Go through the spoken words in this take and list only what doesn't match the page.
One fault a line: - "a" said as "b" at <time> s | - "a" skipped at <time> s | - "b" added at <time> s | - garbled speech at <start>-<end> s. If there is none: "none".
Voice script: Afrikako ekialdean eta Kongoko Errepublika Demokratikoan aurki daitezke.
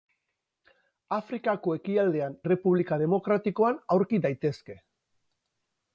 - "eta Kongoko" skipped at 2.4 s